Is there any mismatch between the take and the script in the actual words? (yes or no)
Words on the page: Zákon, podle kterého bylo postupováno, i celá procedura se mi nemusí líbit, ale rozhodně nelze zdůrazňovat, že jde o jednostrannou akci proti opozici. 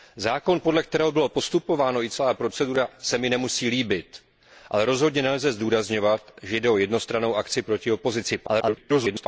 yes